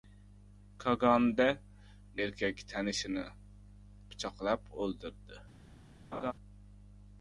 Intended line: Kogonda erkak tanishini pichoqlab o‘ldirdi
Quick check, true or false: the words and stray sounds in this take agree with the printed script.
false